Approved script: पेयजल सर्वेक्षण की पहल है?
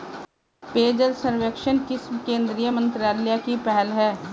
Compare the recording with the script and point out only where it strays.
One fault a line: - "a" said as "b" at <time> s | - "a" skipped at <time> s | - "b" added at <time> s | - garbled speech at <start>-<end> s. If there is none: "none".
- "किस केंद्रीय मंत्रालय" added at 1.8 s